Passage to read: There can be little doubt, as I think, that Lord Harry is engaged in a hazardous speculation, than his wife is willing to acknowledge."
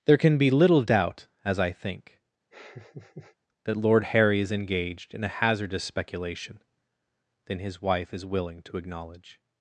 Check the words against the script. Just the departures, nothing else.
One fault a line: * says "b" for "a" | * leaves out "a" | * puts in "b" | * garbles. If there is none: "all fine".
all fine